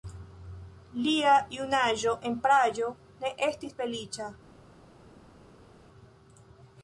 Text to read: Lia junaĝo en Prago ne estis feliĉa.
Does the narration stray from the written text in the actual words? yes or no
no